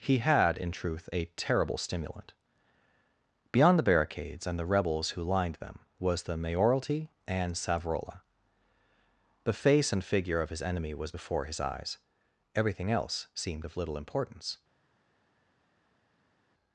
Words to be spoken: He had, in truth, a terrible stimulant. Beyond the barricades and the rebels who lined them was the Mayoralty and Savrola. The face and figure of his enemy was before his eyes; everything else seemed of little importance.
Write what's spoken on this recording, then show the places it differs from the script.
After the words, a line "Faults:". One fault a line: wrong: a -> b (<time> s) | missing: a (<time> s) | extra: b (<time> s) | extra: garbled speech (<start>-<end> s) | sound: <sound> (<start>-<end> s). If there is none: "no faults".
He had, in truth, a terrible stimulant. Beyond the barricades and the rebels who lined them was the Mayoralty and Savrola. The face and figure of his enemy was before his eyes; everything else seemed of little importance.
Faults:
no faults